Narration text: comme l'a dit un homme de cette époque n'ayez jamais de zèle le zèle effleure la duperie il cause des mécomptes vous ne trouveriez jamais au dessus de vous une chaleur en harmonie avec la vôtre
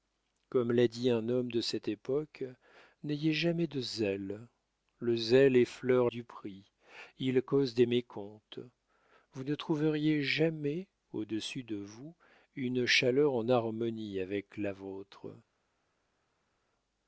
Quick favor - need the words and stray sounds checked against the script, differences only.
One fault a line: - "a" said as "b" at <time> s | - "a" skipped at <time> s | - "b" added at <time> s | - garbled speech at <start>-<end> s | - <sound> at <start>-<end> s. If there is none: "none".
- "la" skipped at 6.1 s